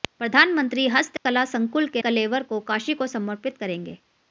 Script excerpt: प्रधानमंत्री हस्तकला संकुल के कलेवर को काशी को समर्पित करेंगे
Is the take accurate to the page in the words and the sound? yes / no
no